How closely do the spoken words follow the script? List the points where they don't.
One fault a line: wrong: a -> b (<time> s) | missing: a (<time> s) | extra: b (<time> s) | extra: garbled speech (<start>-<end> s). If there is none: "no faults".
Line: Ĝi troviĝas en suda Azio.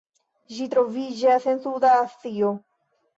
no faults